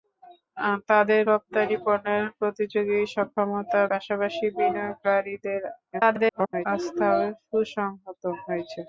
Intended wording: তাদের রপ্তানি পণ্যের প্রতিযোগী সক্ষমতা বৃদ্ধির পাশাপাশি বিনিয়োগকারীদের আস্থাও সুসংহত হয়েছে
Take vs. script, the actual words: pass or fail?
fail